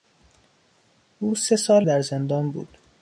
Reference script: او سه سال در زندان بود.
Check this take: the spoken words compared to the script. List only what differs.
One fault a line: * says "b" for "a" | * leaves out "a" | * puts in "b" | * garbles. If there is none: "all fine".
all fine